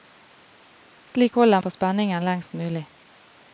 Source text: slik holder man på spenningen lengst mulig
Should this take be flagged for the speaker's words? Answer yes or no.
yes